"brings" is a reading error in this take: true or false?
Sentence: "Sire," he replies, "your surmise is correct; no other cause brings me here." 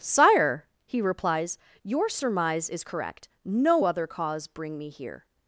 true